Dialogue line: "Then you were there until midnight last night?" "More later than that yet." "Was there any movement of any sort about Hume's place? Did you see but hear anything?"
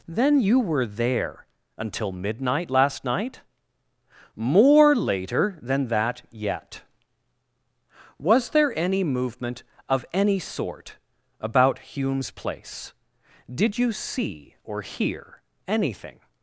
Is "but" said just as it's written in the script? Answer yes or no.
no